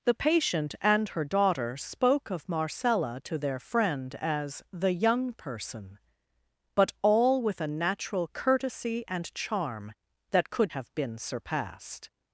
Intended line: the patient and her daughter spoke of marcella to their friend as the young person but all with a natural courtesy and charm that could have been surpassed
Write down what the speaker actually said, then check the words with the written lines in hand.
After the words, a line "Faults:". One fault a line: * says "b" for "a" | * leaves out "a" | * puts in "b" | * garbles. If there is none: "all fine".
the patient and her daughter spoke of marcella to their friend as the young person but all with a natural courtesy and charm that could have been surpassed
Faults:
all fine